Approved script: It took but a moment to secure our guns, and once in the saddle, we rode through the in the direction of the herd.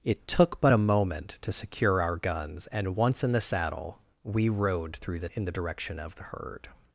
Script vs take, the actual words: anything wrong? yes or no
no